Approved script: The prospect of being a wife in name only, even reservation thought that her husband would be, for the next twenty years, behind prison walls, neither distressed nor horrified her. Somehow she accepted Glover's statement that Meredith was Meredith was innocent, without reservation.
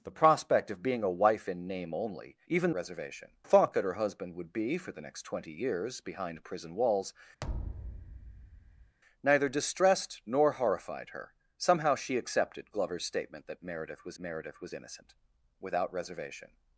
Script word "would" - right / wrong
right